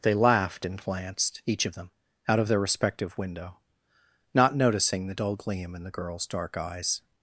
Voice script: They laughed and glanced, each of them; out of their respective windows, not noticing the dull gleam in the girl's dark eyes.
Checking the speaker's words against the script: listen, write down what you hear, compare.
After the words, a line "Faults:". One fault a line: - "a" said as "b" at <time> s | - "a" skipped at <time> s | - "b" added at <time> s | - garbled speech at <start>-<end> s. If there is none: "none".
They laughed and glanced, each of them; out of their respective window, not noticing the dull gleam in the girl's dark eyes.
Faults:
- "windows" said as "window" at 3.2 s